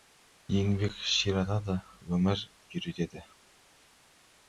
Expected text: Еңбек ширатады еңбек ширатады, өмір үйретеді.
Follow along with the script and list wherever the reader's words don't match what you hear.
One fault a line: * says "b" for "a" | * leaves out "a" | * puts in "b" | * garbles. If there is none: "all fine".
* leaves out "еңбек ширатады"